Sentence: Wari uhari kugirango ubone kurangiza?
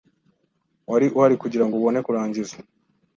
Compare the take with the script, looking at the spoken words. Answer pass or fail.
pass